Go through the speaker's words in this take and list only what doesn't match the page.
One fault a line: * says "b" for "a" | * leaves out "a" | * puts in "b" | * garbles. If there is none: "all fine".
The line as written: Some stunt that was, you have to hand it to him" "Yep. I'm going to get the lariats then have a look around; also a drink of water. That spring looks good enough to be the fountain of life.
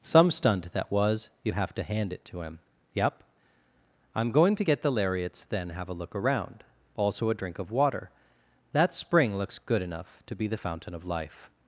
all fine